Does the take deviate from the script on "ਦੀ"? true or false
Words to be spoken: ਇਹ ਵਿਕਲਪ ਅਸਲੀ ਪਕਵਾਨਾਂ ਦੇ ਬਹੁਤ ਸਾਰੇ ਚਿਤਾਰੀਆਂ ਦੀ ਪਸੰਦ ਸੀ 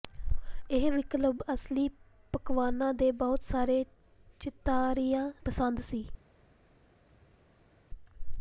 true